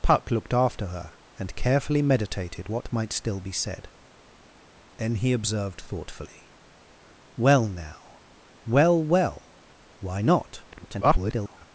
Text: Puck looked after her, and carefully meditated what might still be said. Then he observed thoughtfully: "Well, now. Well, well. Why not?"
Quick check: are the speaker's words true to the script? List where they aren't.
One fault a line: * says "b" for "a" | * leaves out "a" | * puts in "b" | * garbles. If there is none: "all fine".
* garbles